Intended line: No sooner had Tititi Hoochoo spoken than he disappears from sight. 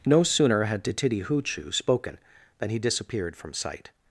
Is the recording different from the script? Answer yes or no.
yes